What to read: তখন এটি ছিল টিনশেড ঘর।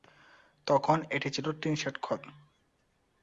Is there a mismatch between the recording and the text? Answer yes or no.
no